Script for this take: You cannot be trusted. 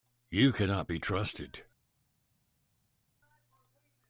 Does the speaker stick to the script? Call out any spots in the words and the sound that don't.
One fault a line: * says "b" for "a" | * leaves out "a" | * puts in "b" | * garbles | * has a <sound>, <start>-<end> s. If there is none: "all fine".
all fine